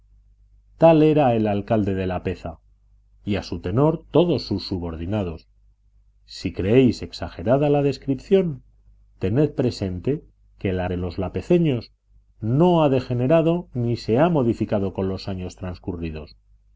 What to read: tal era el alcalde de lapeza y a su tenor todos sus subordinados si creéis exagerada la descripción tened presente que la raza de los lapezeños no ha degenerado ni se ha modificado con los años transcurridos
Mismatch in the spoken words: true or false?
true